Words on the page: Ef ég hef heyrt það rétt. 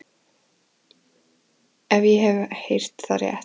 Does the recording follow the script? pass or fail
pass